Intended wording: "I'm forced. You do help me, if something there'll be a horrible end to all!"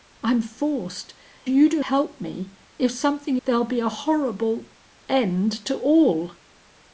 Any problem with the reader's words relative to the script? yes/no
no